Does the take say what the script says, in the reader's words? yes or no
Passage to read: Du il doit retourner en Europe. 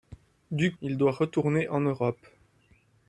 yes